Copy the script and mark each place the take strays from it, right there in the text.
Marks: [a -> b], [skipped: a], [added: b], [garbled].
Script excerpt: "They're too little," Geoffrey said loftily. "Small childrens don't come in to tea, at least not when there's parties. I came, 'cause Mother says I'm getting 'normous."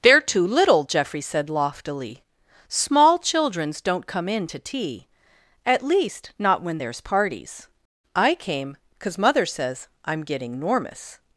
"They're too little," Geoffrey said loftily. "Small childrens don't come in to tea, at least not when there's parties. I came, 'cause Mother says I'm getting 'normous."